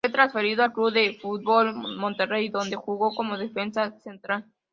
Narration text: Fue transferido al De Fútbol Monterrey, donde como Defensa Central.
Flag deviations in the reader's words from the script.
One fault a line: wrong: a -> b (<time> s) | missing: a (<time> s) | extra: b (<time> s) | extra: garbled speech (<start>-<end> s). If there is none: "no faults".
extra: Club (0.7 s)
extra: jugó (2.8 s)